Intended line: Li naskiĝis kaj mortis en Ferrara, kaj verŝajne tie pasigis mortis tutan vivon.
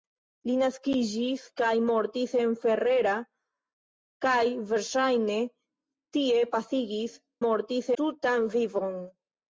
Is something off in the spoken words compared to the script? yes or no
no